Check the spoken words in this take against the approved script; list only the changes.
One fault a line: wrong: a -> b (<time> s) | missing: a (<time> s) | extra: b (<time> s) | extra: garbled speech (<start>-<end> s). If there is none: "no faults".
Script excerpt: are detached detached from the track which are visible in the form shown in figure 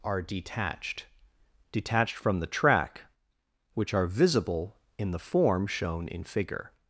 no faults